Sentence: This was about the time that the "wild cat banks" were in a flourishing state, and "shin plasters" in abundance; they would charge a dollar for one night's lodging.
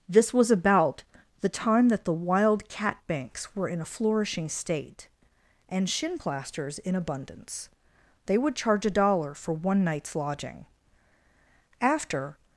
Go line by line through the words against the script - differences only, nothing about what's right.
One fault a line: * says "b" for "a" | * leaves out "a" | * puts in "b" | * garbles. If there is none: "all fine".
* puts in "After"